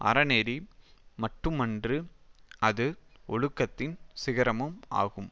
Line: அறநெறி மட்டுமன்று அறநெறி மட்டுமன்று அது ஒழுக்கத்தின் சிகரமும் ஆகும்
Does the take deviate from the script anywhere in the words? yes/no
yes